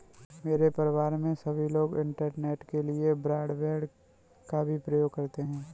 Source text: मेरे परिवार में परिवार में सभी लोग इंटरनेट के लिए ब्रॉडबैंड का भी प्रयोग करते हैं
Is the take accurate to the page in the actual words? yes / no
no